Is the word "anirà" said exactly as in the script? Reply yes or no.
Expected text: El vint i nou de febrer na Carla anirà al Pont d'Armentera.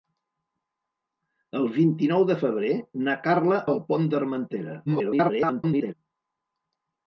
no